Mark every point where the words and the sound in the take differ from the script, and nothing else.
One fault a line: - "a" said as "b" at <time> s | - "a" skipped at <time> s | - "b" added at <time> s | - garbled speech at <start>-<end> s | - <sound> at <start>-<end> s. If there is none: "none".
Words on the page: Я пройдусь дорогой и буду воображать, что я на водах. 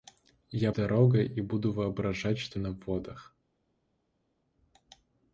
- "пройдусь" skipped at 0.7 s
- "я" skipped at 2.6 s